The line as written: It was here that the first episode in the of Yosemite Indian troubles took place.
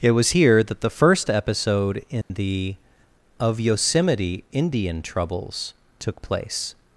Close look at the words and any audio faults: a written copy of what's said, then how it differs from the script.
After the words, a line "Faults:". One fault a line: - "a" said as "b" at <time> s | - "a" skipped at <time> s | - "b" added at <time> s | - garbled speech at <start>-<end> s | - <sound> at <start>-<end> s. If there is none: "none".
It was here that the first episode in the of Yosemite Indian troubles took place.
Faults:
- dropout at 2.2-2.3 s